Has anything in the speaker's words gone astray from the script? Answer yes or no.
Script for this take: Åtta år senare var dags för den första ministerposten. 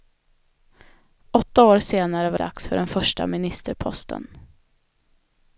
no